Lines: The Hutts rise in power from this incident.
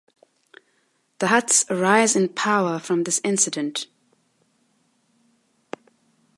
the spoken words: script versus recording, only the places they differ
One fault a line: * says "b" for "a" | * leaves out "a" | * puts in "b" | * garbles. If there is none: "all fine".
all fine